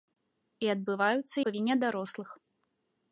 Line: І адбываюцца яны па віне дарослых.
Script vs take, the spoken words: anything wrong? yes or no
yes